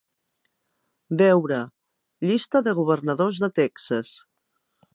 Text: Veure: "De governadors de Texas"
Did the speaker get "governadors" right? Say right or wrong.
right